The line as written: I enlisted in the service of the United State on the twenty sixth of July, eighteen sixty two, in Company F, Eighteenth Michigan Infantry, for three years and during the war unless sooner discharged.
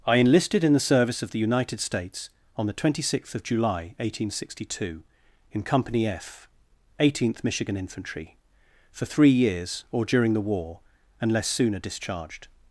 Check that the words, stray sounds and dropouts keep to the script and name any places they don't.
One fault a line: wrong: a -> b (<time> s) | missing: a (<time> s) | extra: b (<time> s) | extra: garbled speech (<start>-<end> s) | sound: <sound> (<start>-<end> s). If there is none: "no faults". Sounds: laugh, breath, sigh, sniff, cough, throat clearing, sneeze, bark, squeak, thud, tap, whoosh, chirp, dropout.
wrong: State -> States (1.8 s)
wrong: and -> or (9.9 s)